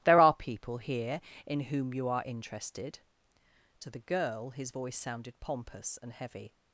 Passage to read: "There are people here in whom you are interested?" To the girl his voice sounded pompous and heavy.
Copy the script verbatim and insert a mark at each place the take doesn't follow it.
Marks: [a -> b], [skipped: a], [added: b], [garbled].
"There are people here in whom you are interested?" To the girl his voice sounded pompous and heavy.